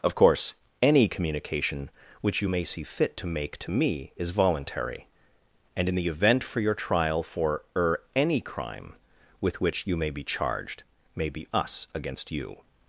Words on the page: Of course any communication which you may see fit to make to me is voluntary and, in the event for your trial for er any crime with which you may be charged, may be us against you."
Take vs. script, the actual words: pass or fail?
pass